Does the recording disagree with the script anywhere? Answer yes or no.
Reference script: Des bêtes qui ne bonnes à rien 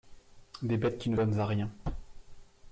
no